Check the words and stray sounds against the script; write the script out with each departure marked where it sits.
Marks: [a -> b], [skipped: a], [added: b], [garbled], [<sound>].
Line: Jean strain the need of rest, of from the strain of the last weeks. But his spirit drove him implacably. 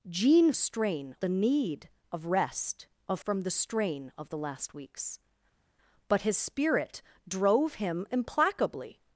Jean strain the need of rest, of from the strain of the last weeks. But his spirit drove him implacably.